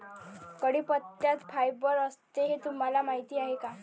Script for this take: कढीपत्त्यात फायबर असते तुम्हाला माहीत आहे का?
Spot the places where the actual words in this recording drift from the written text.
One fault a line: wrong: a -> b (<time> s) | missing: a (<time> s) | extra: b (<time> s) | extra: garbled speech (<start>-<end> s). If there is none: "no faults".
extra: हे (2.4 s)